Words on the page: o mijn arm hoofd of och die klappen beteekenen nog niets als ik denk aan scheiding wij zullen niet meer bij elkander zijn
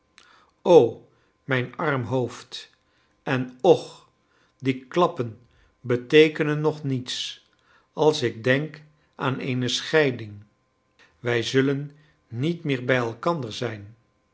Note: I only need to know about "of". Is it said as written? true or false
false